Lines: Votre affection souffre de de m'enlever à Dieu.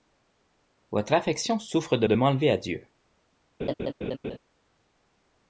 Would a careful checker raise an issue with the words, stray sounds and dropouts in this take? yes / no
yes